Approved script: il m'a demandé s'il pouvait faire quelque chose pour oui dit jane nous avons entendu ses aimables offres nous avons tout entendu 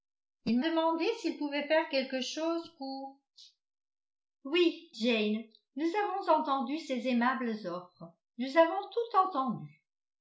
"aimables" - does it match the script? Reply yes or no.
yes